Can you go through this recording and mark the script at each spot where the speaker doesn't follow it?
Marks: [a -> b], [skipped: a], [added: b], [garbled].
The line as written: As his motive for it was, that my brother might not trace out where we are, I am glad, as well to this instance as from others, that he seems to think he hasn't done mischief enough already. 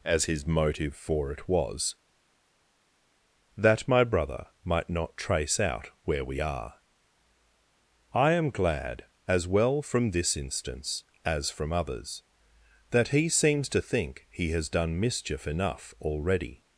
As his motive for it was, that my brother might not trace out where we are, I am glad, as well [to -> from] this instance as from others, that he seems to think he [hasn't -> has] done mischief enough already.